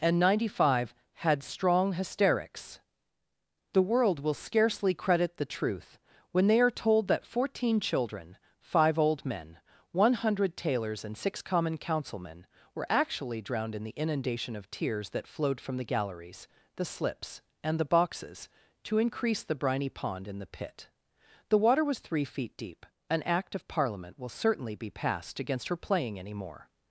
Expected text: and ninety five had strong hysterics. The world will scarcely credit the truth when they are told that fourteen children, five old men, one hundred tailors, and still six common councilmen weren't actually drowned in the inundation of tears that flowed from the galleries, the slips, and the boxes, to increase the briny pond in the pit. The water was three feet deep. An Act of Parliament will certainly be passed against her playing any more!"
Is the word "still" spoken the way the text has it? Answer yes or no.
no